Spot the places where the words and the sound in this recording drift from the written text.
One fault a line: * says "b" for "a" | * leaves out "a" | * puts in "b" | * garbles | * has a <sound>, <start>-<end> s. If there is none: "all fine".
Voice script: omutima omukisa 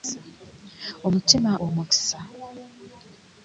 all fine